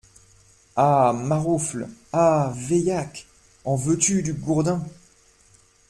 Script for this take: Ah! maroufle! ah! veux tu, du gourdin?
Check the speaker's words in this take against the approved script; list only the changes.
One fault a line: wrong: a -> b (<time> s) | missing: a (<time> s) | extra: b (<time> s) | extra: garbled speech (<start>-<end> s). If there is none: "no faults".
extra: veillaque en (2.5 s)